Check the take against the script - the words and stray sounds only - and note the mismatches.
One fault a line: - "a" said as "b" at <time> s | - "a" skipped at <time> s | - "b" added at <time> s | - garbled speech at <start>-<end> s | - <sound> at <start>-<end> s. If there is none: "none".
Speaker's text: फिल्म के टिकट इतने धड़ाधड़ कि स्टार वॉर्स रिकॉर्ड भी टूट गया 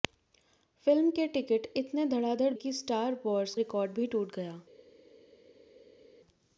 none